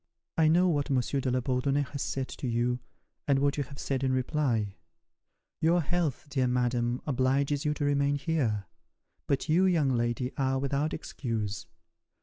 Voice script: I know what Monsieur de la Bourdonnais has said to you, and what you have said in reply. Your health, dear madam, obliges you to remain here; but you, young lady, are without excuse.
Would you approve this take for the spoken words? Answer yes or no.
yes